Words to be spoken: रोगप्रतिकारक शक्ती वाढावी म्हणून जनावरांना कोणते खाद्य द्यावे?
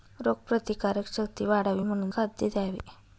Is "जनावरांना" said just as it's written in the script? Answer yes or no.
no